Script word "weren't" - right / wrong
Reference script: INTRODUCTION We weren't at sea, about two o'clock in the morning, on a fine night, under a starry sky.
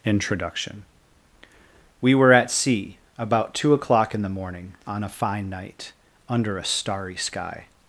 wrong